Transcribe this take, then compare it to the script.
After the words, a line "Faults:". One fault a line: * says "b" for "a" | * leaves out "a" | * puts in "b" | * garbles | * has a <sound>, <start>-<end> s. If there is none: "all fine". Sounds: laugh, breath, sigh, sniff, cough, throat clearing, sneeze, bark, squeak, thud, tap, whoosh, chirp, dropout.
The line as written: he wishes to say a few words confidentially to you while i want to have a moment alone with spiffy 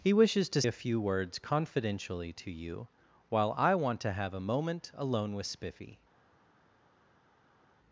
he wishes to a few words confidentially to you while i want to have a moment alone with spiffy
Faults:
* leaves out "say"